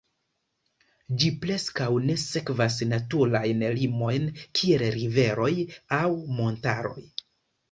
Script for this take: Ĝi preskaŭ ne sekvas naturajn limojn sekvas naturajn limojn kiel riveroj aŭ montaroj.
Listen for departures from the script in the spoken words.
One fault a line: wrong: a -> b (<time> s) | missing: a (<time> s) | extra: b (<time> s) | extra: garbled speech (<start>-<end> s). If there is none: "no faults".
missing: sekvas naturajn limojn (4.3 s)